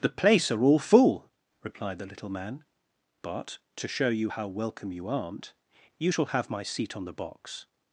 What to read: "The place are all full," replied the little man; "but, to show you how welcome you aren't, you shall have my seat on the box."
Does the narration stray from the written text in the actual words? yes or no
no